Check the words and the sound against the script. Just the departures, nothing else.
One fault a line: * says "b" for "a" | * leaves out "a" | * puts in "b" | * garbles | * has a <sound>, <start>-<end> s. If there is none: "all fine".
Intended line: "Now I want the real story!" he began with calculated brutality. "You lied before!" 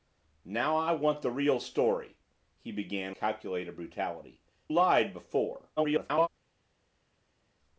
* leaves out "with"
* leaves out "You"
* garbles